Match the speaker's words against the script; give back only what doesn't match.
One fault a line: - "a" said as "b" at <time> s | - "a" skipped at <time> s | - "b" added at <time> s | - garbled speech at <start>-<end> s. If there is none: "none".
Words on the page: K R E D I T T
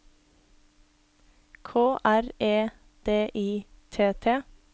none